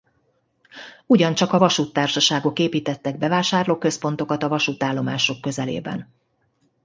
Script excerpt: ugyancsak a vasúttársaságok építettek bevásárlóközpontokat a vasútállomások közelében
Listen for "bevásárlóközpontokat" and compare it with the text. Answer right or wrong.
right